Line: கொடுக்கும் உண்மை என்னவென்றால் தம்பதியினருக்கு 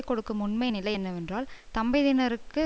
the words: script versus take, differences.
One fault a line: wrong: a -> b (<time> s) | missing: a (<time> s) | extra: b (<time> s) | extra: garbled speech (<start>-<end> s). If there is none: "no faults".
extra: நிலை (0.7 s)